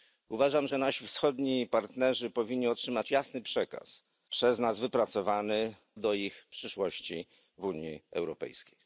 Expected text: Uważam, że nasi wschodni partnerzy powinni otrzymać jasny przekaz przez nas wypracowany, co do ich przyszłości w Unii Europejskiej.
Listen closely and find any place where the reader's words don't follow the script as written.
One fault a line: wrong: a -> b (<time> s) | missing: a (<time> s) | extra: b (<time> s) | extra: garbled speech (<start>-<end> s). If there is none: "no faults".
missing: co (5.7 s)